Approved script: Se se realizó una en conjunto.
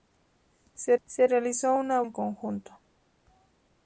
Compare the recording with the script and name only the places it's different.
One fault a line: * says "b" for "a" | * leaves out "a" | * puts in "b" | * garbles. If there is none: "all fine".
all fine